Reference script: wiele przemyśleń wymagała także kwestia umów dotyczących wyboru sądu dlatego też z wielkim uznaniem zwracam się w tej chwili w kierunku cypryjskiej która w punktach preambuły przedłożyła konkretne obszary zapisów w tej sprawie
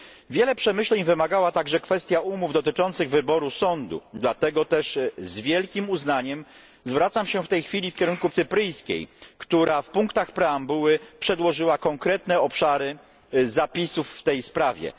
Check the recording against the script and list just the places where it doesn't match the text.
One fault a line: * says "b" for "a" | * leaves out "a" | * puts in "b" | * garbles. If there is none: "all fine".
all fine